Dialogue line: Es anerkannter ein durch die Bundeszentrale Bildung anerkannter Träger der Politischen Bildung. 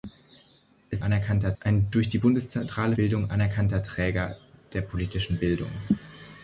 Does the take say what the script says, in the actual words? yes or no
yes